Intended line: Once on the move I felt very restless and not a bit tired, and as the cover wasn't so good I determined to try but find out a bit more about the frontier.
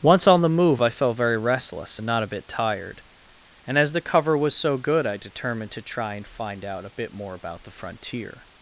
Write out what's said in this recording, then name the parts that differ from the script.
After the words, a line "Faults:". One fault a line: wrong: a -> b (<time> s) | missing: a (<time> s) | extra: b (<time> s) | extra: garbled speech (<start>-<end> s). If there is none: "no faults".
Once on the move I felt very restless and not a bit tired, and as the cover was so good I determined to try and find out a bit more about the frontier.
Faults:
wrong: wasn't -> was (4.4 s)
wrong: but -> and (6.1 s)